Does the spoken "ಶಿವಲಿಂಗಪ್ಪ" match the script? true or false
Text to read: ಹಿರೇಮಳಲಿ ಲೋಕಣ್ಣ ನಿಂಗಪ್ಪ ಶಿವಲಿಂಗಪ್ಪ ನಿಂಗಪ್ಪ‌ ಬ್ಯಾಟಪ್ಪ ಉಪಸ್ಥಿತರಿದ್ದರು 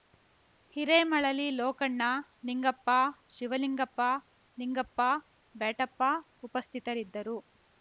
true